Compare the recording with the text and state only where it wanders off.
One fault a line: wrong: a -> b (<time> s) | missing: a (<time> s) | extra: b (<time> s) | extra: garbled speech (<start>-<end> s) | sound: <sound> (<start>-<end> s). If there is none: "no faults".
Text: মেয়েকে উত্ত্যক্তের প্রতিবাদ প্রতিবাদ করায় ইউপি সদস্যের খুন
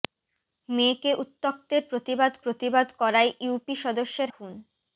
no faults